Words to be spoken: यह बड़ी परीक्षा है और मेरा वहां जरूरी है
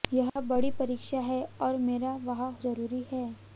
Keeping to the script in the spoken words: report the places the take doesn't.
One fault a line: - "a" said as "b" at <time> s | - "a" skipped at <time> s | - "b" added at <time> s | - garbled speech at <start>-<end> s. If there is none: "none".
none